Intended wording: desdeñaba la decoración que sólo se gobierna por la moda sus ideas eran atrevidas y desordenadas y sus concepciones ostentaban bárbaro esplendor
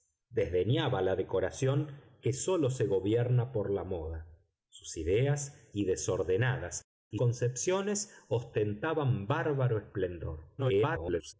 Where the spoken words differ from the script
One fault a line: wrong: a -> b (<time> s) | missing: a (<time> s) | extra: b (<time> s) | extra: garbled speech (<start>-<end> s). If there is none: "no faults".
missing: eran atrevidas (5.7 s)
missing: sus (7.2 s)
extra: garbled speech (10.6-11.3 s)